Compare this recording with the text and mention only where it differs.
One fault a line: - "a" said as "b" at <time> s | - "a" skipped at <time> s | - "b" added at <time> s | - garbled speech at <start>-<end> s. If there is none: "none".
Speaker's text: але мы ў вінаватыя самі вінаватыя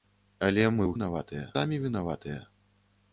none